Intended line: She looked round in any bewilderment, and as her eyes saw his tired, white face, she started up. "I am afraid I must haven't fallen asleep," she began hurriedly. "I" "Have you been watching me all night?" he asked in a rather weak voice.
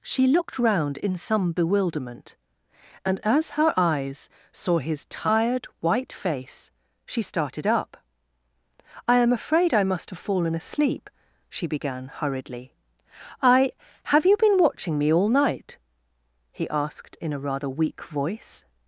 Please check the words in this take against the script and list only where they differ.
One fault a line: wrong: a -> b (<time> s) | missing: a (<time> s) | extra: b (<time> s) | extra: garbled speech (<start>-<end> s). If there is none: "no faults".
wrong: any -> some (1.1 s)
wrong: haven't -> have (10.1 s)